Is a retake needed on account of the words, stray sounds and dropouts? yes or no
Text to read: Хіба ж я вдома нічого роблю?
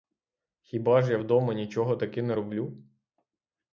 yes